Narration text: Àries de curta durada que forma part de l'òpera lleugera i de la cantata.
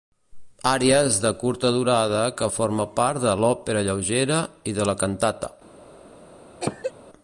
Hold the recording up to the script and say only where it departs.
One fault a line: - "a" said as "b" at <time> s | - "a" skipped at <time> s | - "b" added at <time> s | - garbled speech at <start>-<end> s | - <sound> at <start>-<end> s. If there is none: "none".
- cough at 6.6-6.9 s